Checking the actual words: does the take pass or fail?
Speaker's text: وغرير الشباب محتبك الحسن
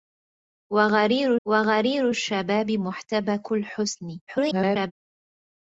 fail